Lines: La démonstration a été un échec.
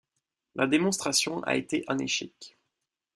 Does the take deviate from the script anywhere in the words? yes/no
no